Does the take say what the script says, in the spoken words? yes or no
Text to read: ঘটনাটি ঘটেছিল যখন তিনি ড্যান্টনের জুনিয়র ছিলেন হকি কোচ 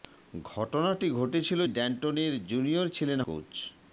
no